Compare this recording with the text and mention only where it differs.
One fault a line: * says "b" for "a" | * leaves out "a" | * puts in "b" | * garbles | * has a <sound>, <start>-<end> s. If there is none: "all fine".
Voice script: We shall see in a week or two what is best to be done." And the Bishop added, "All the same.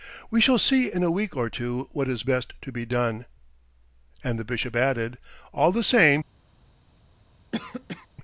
* has a cough, 7.5-8.1 s